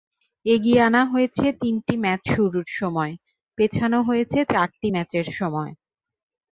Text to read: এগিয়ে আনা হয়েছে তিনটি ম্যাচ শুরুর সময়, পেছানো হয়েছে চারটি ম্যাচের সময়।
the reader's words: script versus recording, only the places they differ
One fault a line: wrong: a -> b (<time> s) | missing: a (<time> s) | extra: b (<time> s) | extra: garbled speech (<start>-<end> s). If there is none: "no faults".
no faults